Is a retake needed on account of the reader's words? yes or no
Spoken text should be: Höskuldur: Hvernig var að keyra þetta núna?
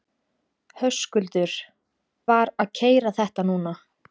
yes